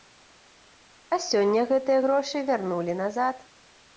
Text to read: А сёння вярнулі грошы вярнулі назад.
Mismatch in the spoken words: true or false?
true